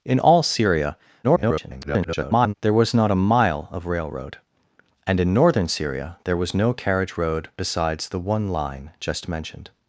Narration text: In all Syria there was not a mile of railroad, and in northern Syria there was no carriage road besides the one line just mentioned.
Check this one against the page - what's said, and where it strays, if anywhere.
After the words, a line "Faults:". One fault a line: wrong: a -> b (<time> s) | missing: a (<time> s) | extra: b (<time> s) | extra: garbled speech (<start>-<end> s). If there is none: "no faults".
In all Syria [garbled] there was not a mile of railroad, and in northern Syria there was no carriage road besides the one line just mentioned.
Faults:
extra: garbled speech (1.2-2.5 s)